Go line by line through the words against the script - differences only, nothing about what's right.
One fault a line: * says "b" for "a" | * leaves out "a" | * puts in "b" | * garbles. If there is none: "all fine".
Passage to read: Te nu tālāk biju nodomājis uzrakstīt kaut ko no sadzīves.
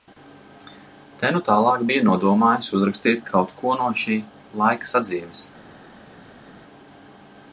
* puts in "šī laika"